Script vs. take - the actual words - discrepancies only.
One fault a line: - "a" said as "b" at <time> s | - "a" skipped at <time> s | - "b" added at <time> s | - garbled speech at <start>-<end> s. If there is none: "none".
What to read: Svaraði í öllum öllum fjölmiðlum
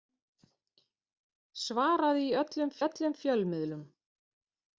none